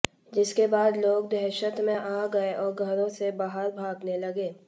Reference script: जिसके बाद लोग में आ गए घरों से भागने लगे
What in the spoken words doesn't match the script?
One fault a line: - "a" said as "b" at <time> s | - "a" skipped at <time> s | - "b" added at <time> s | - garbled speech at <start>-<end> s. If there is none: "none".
- "दहशत" added at 1.3 s
- "और" added at 2.5 s
- "बाहर" added at 3.4 s